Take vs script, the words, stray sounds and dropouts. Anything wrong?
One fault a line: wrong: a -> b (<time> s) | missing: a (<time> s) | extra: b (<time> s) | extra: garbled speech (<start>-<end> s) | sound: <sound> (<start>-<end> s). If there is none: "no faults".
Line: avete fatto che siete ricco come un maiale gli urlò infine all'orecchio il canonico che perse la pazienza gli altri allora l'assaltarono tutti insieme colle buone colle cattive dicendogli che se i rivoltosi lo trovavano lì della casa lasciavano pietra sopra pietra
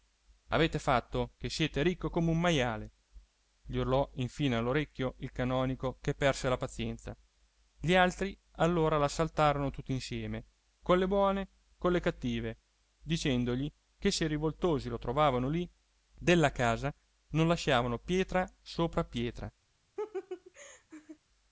extra: non (17.3 s)
sound: laugh (20.0-21.2 s)